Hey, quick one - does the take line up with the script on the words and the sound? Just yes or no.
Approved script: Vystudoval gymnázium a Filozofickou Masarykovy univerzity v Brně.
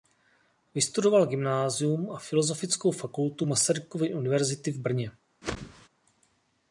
no